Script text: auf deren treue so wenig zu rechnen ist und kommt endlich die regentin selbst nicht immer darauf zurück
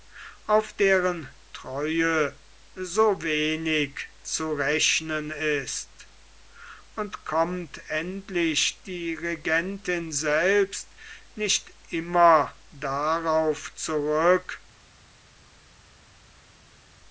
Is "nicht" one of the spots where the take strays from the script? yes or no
no